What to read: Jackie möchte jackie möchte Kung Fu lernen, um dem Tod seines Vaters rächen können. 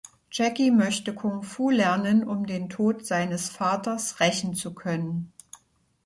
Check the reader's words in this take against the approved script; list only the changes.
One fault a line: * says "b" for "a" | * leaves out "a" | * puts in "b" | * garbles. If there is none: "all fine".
* leaves out "jackie möchte"
* says "den" for "dem"
* puts in "zu"